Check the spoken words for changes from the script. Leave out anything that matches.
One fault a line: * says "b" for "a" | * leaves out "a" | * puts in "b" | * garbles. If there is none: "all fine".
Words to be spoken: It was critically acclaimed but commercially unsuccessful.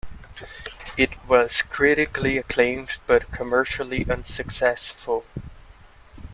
all fine